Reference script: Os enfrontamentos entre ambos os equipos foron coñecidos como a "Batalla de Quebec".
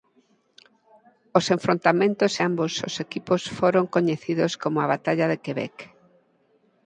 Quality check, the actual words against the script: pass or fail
fail